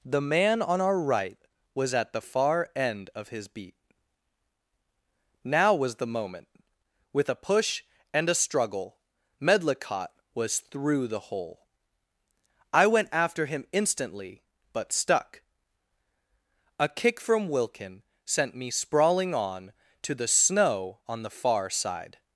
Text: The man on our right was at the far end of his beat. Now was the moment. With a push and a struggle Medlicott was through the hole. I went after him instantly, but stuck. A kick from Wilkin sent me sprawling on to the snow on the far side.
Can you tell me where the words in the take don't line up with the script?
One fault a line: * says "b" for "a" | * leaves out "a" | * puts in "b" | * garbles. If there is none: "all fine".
all fine